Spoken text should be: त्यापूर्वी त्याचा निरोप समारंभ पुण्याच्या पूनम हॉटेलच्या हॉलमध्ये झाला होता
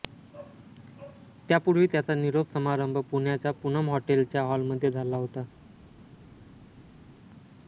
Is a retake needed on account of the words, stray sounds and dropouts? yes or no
no